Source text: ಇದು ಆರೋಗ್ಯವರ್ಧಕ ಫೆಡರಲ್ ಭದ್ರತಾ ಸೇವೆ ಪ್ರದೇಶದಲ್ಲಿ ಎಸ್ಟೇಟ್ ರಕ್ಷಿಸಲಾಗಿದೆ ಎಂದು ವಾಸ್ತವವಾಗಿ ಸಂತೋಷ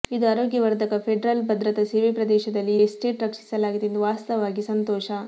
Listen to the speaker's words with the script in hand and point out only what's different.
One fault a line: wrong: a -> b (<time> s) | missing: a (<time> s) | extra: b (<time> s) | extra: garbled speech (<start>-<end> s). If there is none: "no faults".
no faults